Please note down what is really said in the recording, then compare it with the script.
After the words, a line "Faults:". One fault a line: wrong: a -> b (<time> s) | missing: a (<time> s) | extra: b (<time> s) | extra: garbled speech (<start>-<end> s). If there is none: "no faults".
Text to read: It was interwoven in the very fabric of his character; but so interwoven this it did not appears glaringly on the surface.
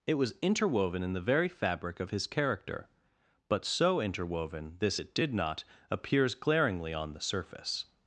It was interwoven in the very fabric of his character; but so interwoven this it did not appears glaringly on the surface.
Faults:
no faults